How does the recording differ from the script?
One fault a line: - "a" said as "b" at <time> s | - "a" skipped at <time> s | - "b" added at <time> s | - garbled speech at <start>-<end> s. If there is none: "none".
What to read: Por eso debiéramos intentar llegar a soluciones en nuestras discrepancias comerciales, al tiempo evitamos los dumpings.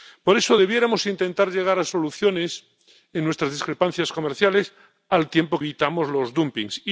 none